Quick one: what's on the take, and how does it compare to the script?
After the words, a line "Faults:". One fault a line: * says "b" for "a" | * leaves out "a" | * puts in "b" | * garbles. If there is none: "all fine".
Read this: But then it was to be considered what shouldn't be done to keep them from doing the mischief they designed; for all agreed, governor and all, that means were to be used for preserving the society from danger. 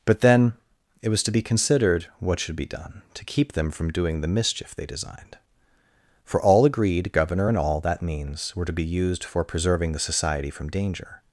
But then it was to be considered what should be done to keep them from doing the mischief they designed; for all agreed, governor and all, that means were to be used for preserving the society from danger.
Faults:
* says "should" for "shouldn't"